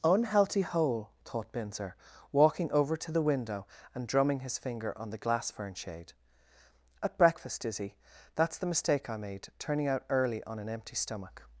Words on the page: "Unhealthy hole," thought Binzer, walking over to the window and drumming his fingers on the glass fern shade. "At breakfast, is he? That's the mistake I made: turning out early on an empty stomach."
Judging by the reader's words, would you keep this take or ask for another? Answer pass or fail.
fail